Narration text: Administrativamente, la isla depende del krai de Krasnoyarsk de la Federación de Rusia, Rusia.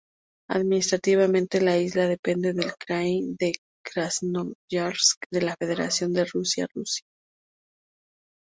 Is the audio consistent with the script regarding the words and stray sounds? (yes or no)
yes